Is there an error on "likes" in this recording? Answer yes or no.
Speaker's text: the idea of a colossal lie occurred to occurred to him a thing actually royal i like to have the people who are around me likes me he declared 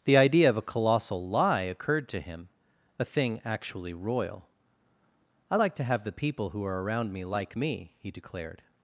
yes